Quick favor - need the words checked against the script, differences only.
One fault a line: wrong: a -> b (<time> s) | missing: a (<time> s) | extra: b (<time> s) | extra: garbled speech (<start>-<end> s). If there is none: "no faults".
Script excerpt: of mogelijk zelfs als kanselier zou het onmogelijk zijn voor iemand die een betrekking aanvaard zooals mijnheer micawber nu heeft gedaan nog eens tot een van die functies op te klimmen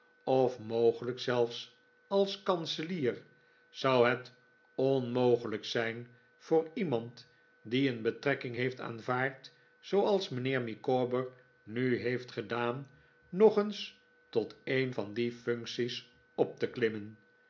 extra: heeft (8.5 s)